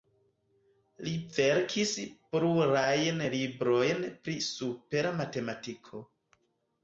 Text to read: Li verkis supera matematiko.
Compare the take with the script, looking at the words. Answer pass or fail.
fail